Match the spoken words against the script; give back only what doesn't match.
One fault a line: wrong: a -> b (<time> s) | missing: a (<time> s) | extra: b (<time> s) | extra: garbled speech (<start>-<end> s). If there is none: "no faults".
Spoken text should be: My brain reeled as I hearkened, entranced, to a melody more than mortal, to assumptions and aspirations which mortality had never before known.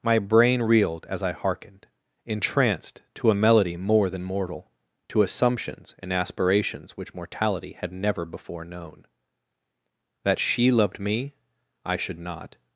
extra: That she loved me I should not (10.2 s)